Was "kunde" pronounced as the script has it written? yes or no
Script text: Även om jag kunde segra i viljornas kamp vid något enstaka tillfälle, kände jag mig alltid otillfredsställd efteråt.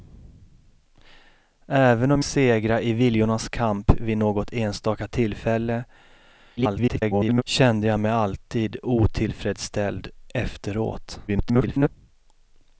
no